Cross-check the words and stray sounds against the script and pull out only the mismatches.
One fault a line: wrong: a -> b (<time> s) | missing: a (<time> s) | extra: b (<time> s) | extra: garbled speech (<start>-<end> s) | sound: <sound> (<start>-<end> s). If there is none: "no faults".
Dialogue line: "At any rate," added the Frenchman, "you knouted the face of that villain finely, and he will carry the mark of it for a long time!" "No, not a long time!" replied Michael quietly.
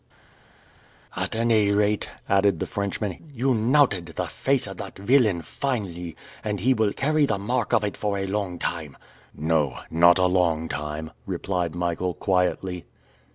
no faults